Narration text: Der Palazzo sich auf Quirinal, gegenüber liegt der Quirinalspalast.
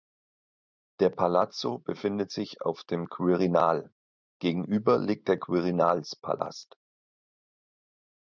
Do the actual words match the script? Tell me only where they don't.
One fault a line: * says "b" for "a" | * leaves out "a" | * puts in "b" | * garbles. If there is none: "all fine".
* puts in "befindet"
* puts in "dem"